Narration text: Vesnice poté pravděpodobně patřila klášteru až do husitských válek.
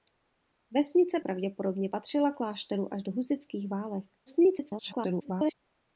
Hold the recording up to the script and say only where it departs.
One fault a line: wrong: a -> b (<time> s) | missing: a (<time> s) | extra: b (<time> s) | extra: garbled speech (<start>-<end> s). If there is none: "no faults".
missing: poté (1.2 s)
extra: garbled speech (4.3-5.5 s)